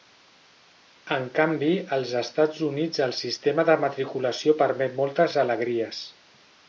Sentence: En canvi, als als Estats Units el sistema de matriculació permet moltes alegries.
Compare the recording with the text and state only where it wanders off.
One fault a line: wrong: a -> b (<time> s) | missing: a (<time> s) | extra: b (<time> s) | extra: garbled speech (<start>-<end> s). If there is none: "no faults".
missing: als (2.1 s)